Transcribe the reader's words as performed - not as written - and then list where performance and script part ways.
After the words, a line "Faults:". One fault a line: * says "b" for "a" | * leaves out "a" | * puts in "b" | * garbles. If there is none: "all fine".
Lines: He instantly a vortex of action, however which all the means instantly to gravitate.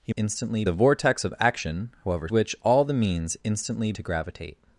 He instantly a vortex of action, however which all the means instantly to gravitate.
Faults:
all fine